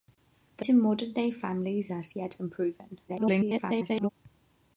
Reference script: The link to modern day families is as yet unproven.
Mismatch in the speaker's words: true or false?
true